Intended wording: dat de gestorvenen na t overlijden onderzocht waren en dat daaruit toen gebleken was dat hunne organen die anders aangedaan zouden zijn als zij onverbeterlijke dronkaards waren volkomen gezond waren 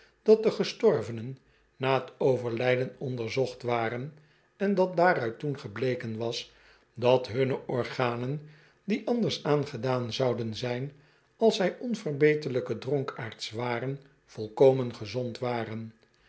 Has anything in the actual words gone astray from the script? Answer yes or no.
no